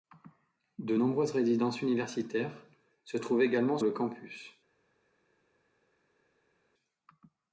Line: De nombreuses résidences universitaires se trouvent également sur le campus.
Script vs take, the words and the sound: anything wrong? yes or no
yes